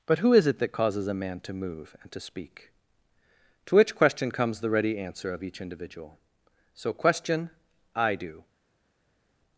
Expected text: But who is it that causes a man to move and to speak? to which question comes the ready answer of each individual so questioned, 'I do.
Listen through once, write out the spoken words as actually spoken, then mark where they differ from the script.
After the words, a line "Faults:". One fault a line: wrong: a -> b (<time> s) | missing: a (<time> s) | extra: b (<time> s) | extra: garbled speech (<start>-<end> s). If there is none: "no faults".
But who is it that causes a man to move and to speak? to which question comes the ready answer of each individual so question, 'I do.
Faults:
wrong: questioned -> question (6.9 s)